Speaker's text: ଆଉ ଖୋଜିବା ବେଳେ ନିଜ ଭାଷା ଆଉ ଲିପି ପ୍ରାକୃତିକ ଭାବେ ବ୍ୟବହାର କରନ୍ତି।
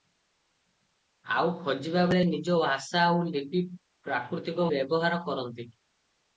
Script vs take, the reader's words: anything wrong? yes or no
yes